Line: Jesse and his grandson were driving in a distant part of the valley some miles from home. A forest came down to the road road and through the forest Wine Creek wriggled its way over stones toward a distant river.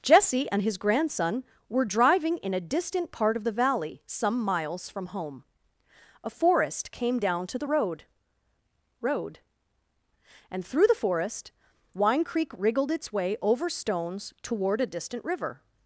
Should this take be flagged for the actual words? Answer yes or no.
no